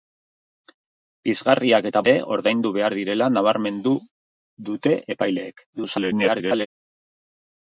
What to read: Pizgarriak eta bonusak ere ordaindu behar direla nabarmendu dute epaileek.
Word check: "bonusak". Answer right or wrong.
wrong